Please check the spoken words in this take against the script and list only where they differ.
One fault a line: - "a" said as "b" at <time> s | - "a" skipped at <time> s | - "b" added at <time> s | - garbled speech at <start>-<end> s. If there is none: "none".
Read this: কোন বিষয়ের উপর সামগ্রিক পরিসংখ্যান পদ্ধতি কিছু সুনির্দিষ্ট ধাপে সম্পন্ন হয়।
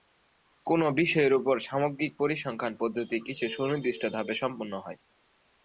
none